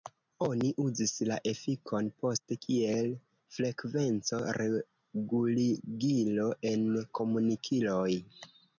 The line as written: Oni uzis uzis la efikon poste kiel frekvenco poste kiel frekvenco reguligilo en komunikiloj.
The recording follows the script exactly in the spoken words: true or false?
false